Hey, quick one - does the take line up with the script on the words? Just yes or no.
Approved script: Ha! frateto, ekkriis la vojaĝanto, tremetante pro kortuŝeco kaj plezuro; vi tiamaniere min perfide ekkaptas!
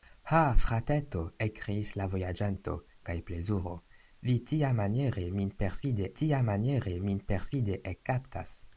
no